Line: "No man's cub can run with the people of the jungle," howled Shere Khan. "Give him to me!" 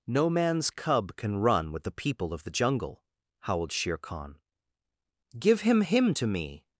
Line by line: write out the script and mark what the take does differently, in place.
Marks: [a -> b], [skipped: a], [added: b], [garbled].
"No man's cub can run with the people of the jungle," howled Shere Khan. "Give him [added: him] to me!"